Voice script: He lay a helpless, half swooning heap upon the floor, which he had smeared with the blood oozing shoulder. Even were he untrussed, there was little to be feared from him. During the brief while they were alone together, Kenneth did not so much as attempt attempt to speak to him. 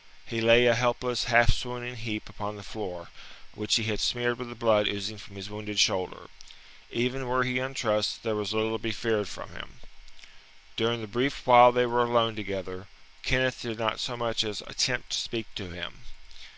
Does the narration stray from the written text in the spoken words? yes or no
yes